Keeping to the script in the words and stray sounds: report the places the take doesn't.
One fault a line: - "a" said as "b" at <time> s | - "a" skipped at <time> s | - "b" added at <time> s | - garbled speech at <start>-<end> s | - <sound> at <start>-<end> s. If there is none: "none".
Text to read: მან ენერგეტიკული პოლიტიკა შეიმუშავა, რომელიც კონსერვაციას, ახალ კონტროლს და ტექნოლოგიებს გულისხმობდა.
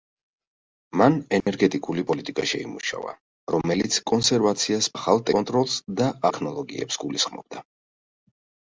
- dropout at 1.4-1.5 s